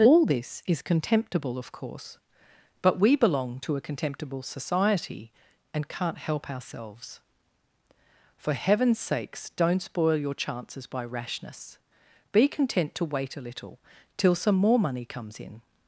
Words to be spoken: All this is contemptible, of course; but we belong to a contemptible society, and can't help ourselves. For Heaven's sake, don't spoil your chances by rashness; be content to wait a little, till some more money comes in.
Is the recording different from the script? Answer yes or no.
yes